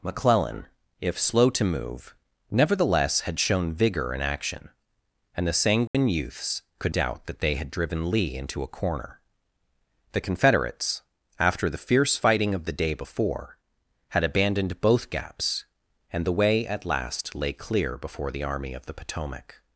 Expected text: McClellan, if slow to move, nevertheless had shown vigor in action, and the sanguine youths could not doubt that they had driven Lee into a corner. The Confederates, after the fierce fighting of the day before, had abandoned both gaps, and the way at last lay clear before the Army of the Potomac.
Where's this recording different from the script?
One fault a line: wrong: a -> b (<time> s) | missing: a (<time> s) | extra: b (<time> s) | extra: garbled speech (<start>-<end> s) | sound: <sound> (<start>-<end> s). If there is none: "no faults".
sound: dropout (5.9-5.9 s)
missing: not (7.0 s)